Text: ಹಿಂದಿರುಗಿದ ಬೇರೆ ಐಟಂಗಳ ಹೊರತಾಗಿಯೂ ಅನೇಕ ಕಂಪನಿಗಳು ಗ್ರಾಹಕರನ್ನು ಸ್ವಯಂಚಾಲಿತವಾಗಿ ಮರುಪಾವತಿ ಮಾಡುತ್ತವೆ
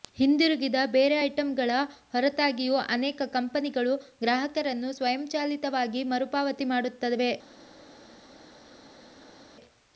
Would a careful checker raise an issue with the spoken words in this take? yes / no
no